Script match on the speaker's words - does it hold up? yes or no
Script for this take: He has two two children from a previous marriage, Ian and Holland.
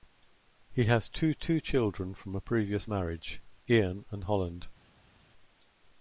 yes